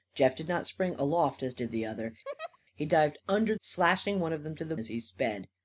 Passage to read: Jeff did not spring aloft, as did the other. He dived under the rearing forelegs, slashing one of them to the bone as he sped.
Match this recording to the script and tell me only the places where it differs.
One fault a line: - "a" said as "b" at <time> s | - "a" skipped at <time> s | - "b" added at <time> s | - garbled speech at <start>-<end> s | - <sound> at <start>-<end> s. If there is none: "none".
- laugh at 2.3-2.6 s
- "the rearing forelegs" skipped at 3.5 s
- "bone" skipped at 4.8 s